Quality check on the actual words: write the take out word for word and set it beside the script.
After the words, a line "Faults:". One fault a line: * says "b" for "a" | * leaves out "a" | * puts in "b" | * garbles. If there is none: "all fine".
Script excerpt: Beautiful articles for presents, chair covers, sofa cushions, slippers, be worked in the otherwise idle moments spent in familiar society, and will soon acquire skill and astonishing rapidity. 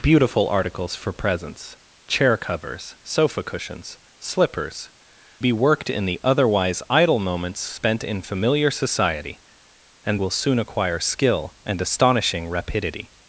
Beautiful articles for presents, chair covers, sofa cushions, slippers, be worked in the otherwise idle moments spent in familiar society, and will soon acquire skill and astonishing rapidity.
Faults:
all fine